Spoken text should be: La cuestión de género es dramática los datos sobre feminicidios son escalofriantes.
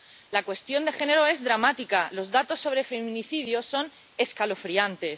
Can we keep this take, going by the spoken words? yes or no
yes